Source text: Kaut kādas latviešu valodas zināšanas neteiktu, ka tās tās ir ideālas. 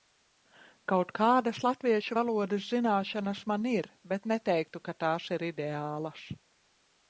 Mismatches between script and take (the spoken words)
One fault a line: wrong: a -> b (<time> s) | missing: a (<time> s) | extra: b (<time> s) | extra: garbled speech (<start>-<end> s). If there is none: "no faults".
extra: man ir bet (3.5 s)
missing: tās (5.3 s)